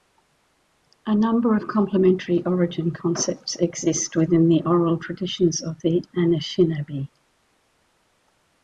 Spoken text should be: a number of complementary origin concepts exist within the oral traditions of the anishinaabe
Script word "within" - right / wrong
right